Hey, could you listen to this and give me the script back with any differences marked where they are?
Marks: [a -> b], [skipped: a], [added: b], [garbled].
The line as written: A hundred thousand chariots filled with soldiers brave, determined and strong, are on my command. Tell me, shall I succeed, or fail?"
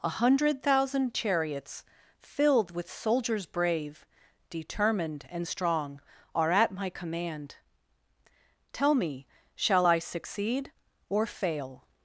A hundred thousand chariots filled with soldiers brave, determined and strong, are [on -> at] my command. Tell me, shall I succeed, or fail?"